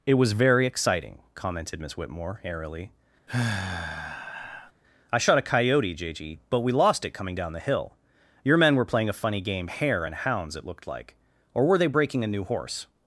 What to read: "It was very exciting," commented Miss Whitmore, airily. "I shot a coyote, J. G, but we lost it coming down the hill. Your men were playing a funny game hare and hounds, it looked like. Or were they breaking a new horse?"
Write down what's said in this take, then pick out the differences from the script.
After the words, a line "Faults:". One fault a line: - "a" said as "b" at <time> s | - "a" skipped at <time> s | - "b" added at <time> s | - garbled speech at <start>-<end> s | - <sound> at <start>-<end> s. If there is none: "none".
"It was very exciting," commented Miss Whitmore, airily. "I shot a coyote, J. G, but we lost it coming down the hill. Your men were playing a funny game hare and hounds, it looked like. Or were they breaking a new horse?"
Faults:
- sigh at 3.3-4.7 s